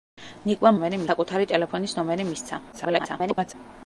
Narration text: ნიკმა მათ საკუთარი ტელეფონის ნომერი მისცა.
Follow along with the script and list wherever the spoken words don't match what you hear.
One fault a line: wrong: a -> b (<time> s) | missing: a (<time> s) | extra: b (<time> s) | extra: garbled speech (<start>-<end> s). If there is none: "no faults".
wrong: მათ -> ნომერი (0.7 s)
extra: garbled speech (2.7-3.5 s)